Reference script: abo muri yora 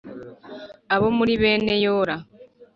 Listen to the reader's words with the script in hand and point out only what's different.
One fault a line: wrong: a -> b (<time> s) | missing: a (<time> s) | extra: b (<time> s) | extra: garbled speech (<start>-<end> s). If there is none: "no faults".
extra: bene (1.4 s)